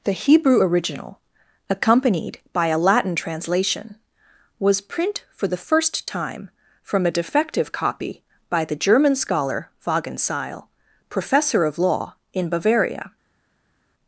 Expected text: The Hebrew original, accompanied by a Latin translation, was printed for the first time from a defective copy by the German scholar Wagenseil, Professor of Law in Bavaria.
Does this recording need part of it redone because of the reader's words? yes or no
yes